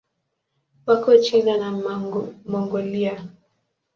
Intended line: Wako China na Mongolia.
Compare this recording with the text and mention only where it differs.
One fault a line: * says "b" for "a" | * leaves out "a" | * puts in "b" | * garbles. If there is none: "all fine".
all fine